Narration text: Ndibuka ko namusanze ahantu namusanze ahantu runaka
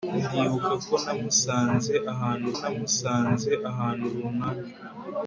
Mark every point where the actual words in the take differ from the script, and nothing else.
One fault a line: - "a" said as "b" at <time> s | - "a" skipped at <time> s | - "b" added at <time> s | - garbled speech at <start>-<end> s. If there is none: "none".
none